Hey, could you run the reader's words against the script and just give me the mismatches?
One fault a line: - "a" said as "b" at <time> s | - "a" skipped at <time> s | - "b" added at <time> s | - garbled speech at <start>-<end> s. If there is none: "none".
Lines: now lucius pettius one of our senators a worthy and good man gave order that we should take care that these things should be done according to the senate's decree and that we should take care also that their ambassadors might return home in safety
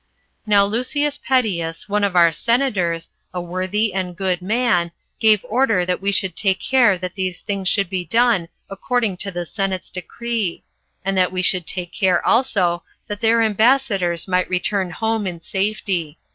none